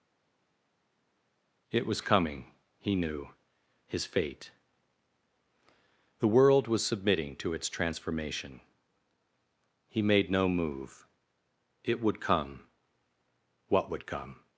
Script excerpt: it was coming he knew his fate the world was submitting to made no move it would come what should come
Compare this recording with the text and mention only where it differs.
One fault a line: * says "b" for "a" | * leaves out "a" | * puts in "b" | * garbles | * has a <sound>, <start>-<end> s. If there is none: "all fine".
* puts in "its transformation he"
* says "would" for "should"